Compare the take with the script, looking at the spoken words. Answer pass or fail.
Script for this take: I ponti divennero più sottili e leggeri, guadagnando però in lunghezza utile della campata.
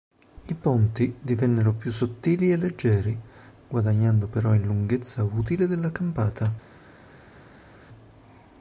pass